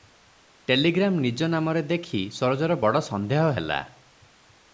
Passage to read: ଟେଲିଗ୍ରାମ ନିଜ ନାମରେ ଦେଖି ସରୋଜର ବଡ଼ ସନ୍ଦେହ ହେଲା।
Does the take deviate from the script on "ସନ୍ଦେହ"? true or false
false